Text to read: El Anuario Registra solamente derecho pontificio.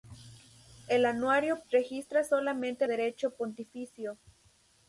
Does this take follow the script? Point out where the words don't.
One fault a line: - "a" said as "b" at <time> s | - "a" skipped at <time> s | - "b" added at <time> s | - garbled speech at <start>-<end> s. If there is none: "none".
none